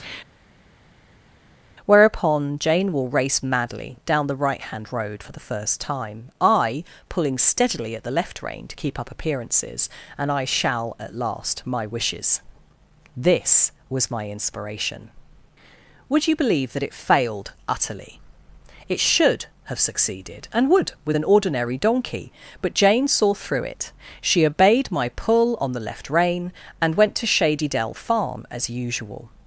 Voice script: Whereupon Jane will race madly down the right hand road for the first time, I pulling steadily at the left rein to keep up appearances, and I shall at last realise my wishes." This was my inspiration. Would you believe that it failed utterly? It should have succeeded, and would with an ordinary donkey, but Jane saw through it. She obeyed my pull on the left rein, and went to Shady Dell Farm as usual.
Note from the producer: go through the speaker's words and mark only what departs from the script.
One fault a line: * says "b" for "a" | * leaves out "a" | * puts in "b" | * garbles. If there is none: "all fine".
* leaves out "realise"